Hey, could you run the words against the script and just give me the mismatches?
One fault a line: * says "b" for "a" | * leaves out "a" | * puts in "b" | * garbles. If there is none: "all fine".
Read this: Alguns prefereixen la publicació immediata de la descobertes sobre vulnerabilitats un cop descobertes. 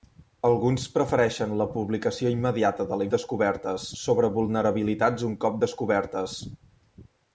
all fine